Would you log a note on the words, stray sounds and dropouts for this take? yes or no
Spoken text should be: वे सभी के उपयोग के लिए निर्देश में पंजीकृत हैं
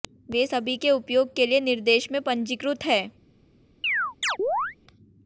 yes